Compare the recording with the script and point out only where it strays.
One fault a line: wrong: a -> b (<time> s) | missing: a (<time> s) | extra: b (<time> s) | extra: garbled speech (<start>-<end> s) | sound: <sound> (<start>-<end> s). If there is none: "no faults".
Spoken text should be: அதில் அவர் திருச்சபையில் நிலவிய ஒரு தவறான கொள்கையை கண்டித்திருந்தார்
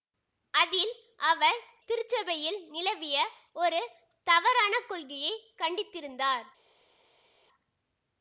no faults